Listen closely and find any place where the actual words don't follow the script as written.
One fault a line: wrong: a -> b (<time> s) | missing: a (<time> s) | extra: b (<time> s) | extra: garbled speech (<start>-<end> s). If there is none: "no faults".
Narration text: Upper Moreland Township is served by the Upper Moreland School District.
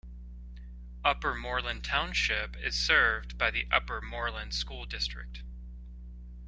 no faults